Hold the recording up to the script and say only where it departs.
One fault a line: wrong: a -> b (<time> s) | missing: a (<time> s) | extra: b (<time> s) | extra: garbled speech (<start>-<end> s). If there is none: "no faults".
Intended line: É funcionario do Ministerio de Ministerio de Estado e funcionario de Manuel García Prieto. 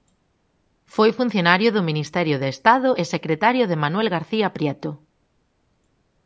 wrong: É -> Foi (0.9 s)
missing: Ministerio de (2.5 s)
wrong: funcionario -> secretario (3.1 s)